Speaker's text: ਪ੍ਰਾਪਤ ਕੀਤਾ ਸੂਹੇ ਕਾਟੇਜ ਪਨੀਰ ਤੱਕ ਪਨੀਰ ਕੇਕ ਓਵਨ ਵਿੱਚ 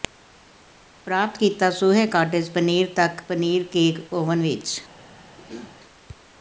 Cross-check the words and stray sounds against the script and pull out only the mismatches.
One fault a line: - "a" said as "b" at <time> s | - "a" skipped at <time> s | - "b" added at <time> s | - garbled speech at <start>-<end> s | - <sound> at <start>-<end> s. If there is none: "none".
- throat clearing at 5.4-5.8 s